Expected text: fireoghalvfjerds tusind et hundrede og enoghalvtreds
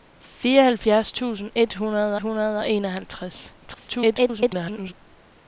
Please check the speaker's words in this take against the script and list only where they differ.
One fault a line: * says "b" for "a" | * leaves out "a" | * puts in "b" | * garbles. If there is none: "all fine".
* puts in "hundrede"
* garbles